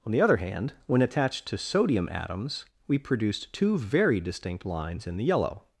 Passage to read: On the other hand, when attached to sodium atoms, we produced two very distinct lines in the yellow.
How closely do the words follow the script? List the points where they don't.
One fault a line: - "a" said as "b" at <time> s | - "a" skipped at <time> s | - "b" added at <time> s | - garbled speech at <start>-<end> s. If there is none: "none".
none